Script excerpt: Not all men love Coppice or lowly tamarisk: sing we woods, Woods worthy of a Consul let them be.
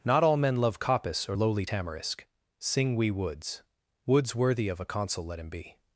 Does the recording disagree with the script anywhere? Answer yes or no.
yes